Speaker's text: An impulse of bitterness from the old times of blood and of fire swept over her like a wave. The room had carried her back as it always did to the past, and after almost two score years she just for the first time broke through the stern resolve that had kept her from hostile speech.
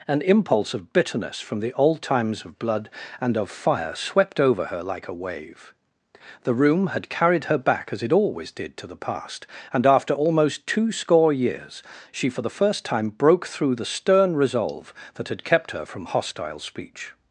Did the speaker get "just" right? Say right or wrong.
wrong